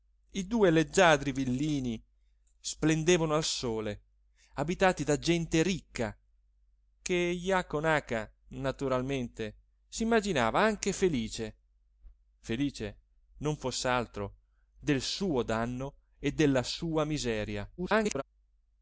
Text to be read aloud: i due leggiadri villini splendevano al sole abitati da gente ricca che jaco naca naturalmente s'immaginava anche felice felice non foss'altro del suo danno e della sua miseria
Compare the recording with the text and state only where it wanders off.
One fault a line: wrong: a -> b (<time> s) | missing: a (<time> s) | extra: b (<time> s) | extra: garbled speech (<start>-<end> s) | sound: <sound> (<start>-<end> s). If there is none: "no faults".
extra: garbled speech (17.8-18.2 s)